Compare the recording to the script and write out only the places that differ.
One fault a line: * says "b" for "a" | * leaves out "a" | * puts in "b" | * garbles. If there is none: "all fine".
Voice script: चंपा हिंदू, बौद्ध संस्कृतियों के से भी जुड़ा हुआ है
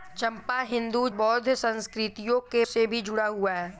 all fine